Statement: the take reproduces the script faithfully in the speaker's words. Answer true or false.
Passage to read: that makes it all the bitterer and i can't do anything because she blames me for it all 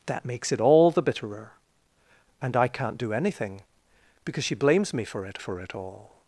false